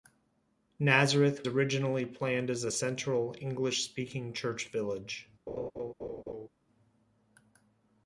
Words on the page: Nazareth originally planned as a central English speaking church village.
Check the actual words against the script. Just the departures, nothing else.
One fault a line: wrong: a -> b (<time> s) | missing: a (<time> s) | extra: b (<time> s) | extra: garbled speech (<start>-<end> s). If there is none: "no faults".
no faults